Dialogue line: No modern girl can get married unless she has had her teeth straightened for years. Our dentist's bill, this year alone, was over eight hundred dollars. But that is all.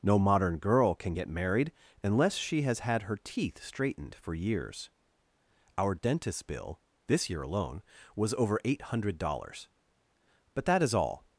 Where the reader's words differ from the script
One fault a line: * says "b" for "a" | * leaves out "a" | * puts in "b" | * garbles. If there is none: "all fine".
all fine